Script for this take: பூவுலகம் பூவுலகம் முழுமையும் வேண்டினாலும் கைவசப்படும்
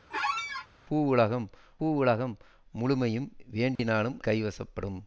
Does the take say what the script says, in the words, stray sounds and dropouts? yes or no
no